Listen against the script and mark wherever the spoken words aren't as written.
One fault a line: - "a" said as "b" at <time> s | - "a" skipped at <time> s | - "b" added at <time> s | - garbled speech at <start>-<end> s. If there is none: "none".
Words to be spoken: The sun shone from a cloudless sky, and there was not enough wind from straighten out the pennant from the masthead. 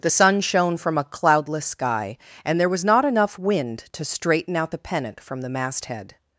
- "from" said as "to" at 3.9 s